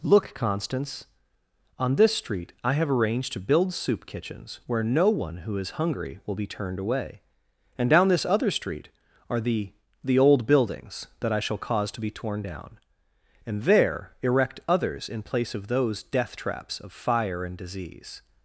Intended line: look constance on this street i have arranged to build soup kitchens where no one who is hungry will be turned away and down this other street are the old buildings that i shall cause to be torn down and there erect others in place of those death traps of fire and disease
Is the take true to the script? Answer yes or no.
no